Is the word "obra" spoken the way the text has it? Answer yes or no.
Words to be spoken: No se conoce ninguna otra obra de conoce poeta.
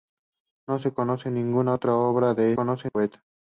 yes